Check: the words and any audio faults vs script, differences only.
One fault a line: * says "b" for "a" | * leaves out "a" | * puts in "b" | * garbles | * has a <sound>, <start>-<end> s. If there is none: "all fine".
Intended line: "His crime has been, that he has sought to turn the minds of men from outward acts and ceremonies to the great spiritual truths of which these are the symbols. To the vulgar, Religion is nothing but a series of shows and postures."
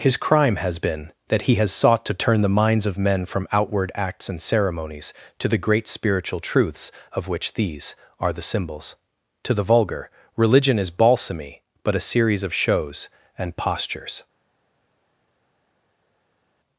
* says "balsamy" for "nothing"